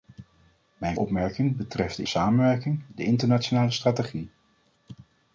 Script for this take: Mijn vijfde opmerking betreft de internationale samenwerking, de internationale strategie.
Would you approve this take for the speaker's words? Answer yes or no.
no